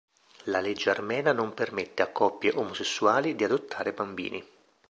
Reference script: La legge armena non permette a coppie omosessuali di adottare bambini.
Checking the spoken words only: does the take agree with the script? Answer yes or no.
yes